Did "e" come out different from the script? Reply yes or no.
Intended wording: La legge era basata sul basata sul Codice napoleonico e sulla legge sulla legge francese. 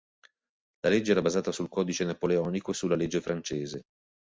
no